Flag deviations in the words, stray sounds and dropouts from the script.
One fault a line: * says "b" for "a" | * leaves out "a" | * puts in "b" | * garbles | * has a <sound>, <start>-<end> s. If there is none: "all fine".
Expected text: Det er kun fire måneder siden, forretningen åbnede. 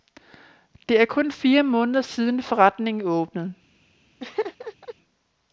* has a laugh, 4.2-4.9 s